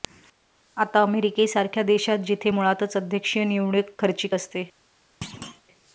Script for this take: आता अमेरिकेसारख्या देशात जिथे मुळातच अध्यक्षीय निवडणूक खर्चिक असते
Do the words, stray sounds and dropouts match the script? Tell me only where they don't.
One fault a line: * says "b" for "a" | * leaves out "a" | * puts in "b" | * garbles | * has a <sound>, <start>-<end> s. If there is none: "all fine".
* has a thud, 5.2-5.6 s